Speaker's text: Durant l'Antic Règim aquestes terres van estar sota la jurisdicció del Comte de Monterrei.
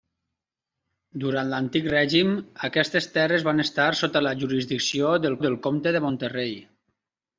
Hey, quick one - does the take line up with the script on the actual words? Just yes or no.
no